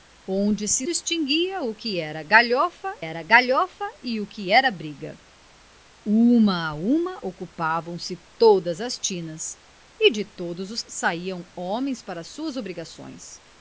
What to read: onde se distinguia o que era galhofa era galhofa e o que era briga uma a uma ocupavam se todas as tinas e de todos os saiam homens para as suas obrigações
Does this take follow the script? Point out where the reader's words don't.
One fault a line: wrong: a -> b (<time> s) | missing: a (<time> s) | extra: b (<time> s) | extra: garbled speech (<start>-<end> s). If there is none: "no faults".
no faults